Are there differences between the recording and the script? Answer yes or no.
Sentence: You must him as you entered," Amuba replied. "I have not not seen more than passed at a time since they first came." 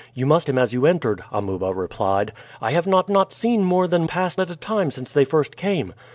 no